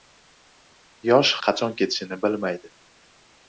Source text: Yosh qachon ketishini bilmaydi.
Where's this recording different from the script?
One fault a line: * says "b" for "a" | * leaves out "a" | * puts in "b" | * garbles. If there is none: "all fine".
all fine